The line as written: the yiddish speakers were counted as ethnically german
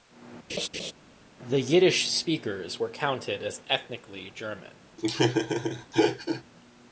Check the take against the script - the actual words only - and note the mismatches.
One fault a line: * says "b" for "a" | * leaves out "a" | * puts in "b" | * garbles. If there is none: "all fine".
all fine